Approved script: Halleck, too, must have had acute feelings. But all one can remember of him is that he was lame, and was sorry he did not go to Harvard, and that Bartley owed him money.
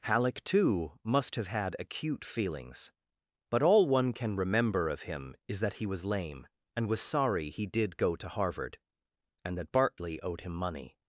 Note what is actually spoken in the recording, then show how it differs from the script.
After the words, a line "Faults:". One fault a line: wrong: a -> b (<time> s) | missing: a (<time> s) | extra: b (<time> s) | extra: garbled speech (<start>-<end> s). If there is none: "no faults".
Halleck, too, must have had acute feelings. But all one can remember of him is that he was lame, and was sorry he did go to Harvard, and that Bartley owed him money.
Faults:
missing: not (8.0 s)